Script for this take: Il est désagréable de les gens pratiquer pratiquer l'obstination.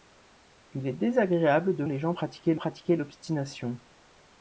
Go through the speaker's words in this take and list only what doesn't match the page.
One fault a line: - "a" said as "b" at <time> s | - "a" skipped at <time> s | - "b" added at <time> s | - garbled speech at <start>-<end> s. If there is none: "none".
none